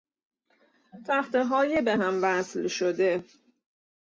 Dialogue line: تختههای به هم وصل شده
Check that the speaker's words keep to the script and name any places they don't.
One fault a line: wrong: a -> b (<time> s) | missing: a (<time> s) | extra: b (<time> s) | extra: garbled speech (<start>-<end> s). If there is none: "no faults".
no faults